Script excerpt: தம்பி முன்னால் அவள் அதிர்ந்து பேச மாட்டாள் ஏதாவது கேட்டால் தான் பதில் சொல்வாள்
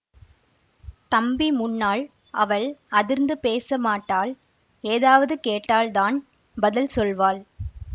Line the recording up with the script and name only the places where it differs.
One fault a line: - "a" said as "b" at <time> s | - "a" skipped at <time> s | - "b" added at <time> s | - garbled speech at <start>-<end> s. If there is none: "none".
none